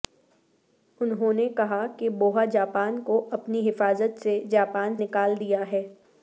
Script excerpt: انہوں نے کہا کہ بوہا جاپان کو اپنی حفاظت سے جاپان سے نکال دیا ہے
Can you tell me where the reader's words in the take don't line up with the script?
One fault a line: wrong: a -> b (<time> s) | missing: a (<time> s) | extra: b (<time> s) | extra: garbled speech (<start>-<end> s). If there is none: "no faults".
missing: سے (5.0 s)